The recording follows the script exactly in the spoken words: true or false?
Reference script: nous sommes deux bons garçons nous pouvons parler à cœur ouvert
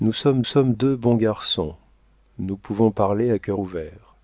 false